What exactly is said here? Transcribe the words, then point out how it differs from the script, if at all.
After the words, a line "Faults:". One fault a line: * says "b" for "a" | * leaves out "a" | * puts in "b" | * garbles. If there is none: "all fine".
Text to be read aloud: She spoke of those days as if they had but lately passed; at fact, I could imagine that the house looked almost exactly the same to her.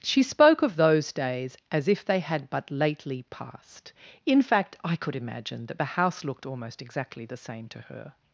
She spoke of those days as if they had but lately passed; in fact, I could imagine that the house looked almost exactly the same to her.
Faults:
* says "in" for "at"